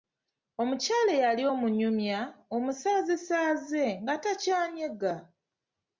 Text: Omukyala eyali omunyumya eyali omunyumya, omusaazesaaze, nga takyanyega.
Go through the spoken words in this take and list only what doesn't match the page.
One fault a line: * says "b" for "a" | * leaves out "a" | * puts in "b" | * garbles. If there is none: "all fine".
* leaves out "eyali omunyumya"